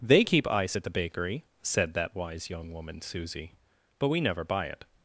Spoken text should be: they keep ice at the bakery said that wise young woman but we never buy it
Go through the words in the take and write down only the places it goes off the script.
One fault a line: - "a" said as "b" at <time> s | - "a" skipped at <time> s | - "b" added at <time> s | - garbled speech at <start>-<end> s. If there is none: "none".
- "susie" added at 3.0 s